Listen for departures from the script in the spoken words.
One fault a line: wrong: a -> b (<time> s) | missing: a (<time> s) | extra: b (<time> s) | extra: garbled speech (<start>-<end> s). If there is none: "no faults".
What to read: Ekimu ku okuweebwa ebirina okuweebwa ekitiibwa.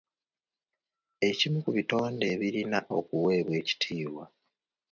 wrong: okuweebwa -> bitonde (1.8 s)